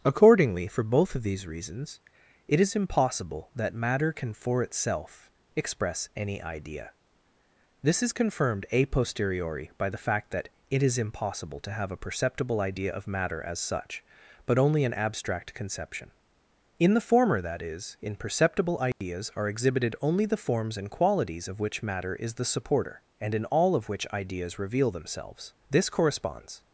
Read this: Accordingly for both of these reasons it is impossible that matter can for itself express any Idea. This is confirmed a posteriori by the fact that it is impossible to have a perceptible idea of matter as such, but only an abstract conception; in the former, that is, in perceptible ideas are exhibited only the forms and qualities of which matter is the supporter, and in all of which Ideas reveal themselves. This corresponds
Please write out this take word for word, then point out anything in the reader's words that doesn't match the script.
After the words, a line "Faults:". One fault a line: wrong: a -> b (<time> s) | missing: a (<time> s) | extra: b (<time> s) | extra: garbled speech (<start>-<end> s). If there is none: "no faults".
Accordingly for both of these reasons it is impossible that matter can for itself express any Idea. This is confirmed a posteriori by the fact that it is impossible to have a perceptible idea of matter as such, but only an abstract conception; in the former, that is, in perceptible ideas are exhibited only the forms and qualities of which matter is the supporter, and in all of which Ideas reveal themselves. This corresponds
Faults:
no faults